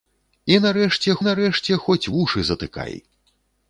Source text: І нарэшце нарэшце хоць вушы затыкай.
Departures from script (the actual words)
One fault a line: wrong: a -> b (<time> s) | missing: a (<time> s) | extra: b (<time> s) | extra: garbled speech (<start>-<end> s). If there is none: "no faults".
no faults